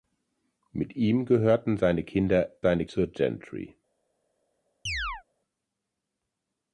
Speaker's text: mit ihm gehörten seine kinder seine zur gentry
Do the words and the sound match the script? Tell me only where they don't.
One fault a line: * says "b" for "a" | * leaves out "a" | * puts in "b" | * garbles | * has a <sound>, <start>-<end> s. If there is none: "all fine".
* has a chirp, 4.9-5.2 s